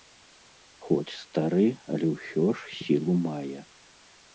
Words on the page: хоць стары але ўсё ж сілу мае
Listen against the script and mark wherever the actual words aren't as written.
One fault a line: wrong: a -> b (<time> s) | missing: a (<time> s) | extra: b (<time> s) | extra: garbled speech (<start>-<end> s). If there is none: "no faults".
no faults